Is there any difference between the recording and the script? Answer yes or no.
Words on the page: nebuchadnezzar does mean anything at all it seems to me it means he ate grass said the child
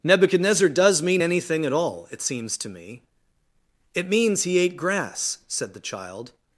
no